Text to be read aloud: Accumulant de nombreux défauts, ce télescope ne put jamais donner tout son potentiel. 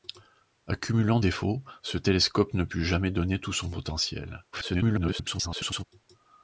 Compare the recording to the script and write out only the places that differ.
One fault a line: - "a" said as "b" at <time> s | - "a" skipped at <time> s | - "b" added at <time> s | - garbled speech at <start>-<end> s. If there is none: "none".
- "de nombreux" skipped at 1.2 s
- garbled speech at 4.5-5.8 s